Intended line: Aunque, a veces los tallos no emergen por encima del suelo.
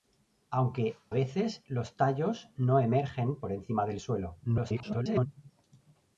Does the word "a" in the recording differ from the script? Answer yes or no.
yes